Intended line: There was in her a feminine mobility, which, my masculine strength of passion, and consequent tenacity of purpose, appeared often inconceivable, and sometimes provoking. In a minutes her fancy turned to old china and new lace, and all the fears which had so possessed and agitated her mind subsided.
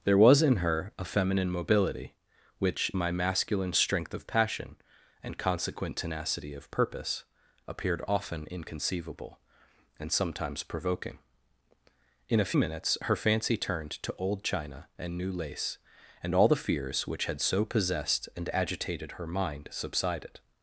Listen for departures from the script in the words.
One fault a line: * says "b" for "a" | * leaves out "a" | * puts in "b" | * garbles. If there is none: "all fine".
all fine